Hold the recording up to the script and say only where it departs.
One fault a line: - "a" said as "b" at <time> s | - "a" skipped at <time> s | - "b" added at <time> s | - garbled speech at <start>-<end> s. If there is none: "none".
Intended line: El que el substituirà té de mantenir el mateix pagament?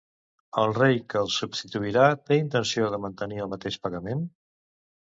- "rei" added at 0.8 s
- "intenció" added at 2.5 s